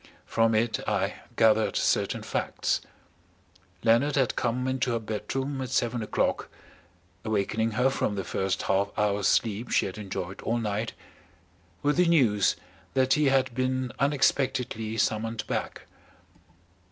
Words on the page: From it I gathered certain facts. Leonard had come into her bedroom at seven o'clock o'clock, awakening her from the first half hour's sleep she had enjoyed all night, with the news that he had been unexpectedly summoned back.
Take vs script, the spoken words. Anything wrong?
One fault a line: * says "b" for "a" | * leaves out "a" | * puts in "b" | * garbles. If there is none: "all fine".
* leaves out "o'clock"